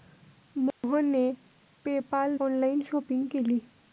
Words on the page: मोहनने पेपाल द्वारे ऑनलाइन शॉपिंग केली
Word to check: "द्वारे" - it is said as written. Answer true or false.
false